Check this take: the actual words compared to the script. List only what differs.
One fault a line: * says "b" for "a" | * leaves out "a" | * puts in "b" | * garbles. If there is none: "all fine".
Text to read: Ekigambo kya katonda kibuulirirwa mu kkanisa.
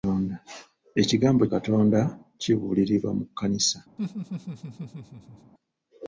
* leaves out "kya"